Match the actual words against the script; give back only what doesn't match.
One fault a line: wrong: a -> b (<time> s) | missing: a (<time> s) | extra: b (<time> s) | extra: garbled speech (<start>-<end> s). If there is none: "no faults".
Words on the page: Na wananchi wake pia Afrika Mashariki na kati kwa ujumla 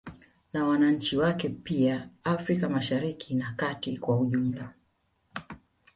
no faults